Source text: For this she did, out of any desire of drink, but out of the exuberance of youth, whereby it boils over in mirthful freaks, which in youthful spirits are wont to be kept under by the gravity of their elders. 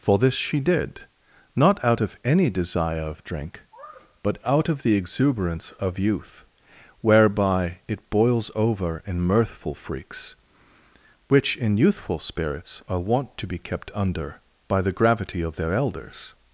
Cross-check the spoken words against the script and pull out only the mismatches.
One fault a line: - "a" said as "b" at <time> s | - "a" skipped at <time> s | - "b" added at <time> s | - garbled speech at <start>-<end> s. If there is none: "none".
- "not" added at 1.6 s